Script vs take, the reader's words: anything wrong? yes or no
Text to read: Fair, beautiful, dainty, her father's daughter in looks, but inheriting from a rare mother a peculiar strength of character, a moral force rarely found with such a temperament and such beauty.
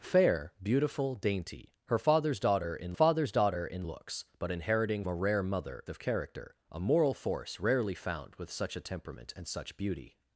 yes